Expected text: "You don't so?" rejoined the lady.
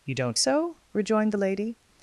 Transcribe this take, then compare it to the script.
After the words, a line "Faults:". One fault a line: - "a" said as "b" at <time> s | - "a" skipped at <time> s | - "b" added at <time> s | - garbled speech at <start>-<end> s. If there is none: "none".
"You don't so?" rejoined the lady.
Faults:
none